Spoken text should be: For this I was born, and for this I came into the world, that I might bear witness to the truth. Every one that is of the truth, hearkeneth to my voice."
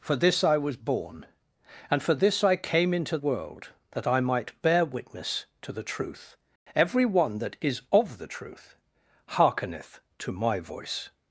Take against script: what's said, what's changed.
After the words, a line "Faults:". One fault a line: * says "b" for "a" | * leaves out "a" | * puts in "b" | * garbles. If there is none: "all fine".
For this I was born, and for this I came into world, that I might bear witness to the truth. Every one that is of the truth, hearkeneth to my voice."
Faults:
* leaves out "the"